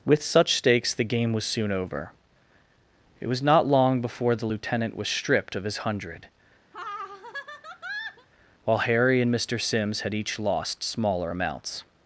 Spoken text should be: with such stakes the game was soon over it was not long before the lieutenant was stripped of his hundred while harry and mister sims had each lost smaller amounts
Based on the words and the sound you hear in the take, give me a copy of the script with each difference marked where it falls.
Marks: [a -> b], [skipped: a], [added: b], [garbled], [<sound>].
with such stakes the game was soon over it was not long before the lieutenant was stripped of his hundred [laugh] while harry and mister sims had each lost smaller amounts